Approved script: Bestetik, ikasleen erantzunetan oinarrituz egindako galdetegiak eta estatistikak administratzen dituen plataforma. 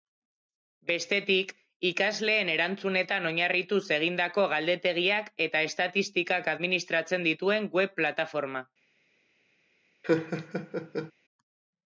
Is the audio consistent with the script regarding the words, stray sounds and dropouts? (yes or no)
no